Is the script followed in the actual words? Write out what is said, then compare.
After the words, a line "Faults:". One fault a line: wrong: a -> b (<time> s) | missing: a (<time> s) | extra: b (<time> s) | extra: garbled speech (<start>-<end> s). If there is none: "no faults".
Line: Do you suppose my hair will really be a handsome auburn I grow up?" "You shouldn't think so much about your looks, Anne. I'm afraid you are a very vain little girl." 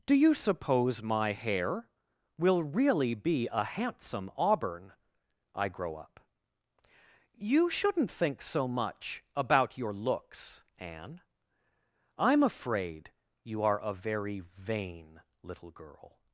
Do you suppose my hair will really be a handsome auburn I grow up?" "You shouldn't think so much about your looks, Anne. I'm afraid you are a very vain little girl."
Faults:
no faults